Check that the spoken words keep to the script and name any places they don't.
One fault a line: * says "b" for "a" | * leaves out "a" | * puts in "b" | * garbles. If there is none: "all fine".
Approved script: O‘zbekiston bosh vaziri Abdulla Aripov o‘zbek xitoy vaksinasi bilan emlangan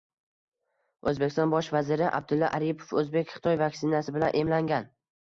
all fine